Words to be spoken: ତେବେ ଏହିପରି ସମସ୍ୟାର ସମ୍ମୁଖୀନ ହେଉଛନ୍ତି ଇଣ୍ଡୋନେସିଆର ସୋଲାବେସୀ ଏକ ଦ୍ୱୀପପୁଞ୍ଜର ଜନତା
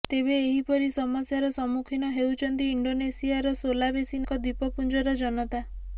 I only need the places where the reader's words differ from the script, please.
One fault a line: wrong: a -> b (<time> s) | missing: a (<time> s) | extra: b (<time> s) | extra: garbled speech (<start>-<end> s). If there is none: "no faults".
no faults